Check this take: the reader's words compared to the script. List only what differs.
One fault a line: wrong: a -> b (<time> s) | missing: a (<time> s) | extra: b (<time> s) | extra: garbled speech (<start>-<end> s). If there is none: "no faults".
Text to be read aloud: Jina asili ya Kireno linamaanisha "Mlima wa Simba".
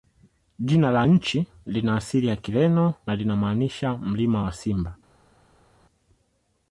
extra: la nchi lina (0.9 s)
extra: na (3.1 s)